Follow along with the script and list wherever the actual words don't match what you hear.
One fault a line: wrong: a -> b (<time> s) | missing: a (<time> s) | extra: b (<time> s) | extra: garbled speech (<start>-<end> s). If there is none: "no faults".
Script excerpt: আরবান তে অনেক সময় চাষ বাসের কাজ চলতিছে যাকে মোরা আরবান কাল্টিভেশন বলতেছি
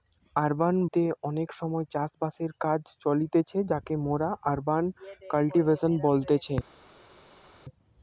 no faults